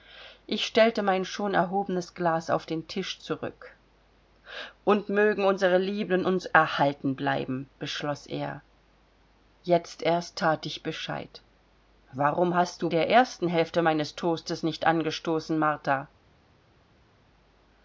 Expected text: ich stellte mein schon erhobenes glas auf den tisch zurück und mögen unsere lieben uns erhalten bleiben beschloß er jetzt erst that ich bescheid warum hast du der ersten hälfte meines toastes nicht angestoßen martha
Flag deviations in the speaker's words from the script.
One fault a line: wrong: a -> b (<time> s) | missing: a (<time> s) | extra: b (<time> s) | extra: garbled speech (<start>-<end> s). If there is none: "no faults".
no faults